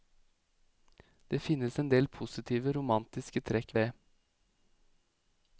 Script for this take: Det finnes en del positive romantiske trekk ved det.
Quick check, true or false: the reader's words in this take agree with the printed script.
false